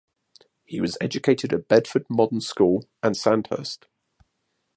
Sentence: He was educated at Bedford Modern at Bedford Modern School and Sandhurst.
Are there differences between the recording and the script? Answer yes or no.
yes